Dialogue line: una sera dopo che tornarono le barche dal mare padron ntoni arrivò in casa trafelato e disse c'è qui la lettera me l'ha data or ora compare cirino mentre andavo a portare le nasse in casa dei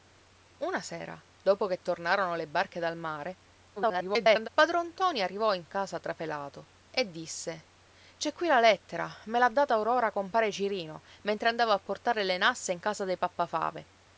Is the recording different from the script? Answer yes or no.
yes